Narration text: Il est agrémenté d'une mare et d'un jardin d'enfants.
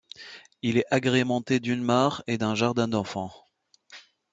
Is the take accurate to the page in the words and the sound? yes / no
yes